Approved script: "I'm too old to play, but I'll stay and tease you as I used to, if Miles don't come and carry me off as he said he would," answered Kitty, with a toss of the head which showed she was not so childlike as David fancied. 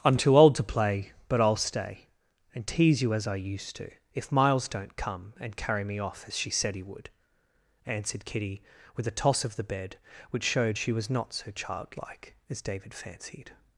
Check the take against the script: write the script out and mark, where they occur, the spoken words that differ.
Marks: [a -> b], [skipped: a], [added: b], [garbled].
"I'm too old to play, but I'll stay and tease you as I used to, if Miles don't come and carry me off as [he -> she] said he would," answered Kitty, with a toss of the [head -> bed] which showed she was not so childlike as David fancied.